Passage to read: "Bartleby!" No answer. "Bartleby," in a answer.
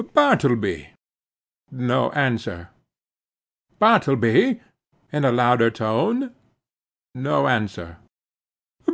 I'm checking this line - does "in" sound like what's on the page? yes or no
yes